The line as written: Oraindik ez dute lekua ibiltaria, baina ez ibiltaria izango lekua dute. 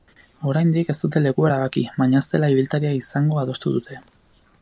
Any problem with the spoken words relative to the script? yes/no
yes